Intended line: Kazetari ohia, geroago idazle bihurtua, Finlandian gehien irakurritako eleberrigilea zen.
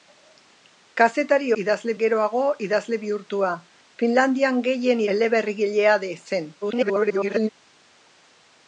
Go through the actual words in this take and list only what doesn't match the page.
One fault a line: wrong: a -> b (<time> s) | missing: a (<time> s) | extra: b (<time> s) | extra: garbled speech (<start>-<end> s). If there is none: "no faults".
wrong: ohia -> idazle (1.6 s)
missing: irakurritako (5.0 s)
extra: garbled speech (6.6-7.5 s)